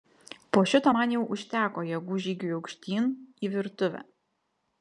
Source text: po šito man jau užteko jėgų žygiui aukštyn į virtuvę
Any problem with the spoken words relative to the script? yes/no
no